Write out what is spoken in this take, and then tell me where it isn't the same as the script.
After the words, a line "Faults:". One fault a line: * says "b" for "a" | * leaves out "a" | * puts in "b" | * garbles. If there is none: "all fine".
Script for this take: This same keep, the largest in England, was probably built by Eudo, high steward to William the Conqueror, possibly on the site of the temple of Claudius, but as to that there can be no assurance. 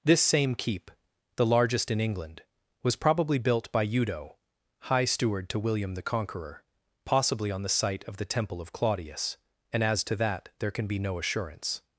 This same keep, the largest in England, was probably built by Eudo, high steward to William the Conqueror, possibly on the site of the temple of Claudius, and as to that there can be no assurance.
Faults:
* says "and" for "but"